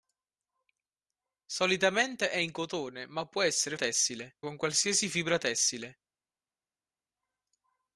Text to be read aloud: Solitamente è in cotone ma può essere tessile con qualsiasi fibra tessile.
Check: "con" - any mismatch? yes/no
no